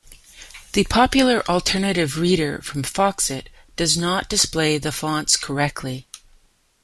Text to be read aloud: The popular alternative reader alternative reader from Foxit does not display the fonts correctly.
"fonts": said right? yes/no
yes